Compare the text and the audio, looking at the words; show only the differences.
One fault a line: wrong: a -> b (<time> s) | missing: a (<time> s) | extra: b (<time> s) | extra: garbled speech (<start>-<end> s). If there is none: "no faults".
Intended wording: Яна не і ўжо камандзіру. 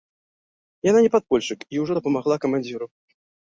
extra: падпольшчык (1.2 s)
extra: дапамагла (2.0 s)